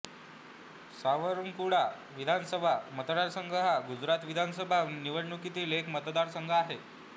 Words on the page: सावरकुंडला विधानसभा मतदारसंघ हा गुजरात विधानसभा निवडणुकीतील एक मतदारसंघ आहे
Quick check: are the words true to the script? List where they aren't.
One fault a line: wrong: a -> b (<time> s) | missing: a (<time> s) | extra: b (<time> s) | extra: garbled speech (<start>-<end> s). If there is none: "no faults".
no faults